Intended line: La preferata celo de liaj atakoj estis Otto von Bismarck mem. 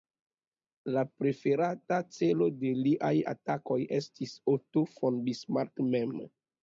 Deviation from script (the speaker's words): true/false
false